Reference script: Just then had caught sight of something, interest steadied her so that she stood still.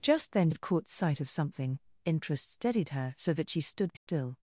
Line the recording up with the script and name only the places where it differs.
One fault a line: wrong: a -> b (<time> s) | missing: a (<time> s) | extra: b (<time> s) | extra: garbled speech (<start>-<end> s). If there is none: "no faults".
no faults